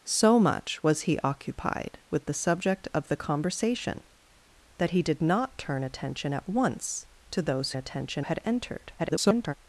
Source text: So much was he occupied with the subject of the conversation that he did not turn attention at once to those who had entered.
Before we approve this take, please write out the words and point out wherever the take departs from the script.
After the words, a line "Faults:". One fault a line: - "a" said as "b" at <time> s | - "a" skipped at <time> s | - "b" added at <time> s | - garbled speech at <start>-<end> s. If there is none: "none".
So much was he occupied with the subject of the conversation that he did not turn attention at once to those attention had entered. [garbled]
Faults:
- "who" said as "attention" at 7.8 s
- garbled speech at 9.0-9.5 s